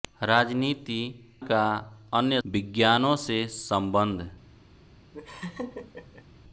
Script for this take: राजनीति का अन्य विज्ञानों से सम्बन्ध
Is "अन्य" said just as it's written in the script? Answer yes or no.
yes